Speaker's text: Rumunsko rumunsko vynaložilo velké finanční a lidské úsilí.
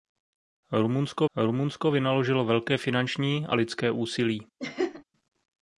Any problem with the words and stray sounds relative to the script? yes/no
yes